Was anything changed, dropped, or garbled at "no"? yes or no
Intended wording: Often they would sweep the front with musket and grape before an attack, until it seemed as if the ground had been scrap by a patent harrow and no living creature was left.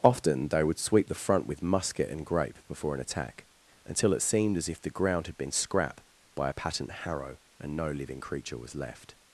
no